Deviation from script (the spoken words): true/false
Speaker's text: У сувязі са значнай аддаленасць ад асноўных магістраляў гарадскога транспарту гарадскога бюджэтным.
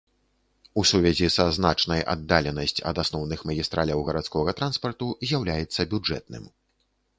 true